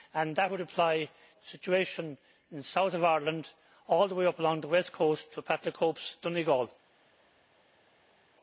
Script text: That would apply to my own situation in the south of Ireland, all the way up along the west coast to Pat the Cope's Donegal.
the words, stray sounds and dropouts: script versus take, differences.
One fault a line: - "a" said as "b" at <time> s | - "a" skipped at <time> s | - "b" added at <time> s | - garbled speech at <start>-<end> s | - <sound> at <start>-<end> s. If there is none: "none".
- "to my own" skipped at 1.1 s